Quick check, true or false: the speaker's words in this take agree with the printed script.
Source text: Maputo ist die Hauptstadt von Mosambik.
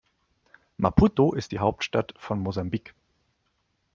true